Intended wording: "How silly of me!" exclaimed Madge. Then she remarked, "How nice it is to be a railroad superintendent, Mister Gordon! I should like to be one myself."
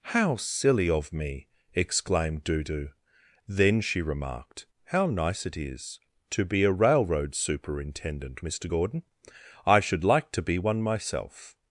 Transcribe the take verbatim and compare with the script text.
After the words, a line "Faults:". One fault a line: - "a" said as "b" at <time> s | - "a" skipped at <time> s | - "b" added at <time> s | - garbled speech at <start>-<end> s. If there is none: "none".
"How silly of me!" exclaimed Dudu. Then she remarked, "How nice it is to be a railroad superintendent, Mister Gordon! I should like to be one myself."
Faults:
- "Madge" said as "Dudu" at 2.4 s